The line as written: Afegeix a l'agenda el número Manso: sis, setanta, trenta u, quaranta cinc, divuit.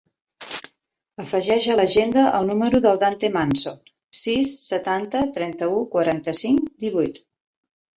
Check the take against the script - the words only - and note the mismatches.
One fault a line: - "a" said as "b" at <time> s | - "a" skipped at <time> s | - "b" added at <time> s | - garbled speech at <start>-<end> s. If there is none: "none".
- "del Dante" added at 2.9 s